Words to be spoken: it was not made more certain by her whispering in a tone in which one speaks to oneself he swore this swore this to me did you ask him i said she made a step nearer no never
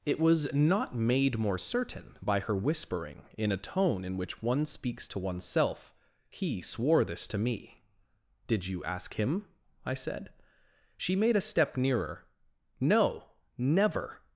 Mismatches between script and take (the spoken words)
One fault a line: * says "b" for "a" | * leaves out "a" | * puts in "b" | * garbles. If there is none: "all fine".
* leaves out "swore this"